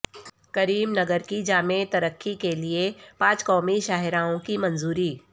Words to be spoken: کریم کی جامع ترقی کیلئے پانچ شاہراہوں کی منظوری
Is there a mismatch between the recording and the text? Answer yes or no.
yes